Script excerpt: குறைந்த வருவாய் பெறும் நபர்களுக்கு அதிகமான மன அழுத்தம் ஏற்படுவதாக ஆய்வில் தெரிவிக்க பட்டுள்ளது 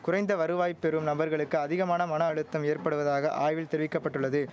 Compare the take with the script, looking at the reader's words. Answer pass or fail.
pass